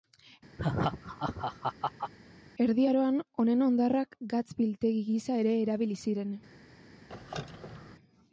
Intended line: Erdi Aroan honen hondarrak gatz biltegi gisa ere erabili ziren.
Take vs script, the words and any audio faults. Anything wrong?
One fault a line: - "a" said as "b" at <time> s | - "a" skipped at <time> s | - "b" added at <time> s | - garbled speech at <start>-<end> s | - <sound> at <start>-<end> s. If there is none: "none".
- laugh at 0.6-2.1 s
- squeak at 7.1-8.0 s